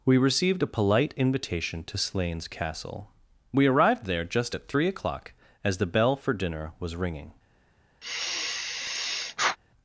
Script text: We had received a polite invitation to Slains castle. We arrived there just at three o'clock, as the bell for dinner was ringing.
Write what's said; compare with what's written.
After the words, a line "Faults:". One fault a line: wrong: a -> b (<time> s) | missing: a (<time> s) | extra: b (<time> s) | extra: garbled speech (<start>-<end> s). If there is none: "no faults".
We received a polite invitation to Slains castle. We arrived there just at three o'clock, as the bell for dinner was ringing.
Faults:
missing: had (0.2 s)